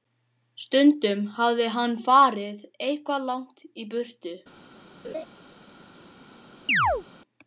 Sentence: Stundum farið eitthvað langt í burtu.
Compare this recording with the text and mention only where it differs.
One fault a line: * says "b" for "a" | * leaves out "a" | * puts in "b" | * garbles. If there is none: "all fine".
* puts in "hafði hann"